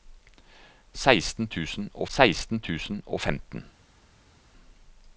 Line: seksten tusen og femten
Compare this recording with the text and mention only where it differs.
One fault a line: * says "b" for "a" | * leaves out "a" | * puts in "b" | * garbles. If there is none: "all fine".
* puts in "seksten tusen og"